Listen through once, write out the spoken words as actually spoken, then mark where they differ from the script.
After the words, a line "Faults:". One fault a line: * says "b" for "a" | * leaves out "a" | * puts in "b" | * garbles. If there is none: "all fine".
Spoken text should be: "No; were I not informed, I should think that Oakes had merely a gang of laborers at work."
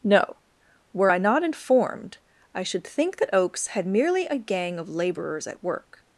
"No; were I not informed, I should think that Oakes had merely a gang of laborers at work."
Faults:
all fine